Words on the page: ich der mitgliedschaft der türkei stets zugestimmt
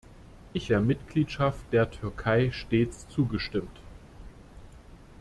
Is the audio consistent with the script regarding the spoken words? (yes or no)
yes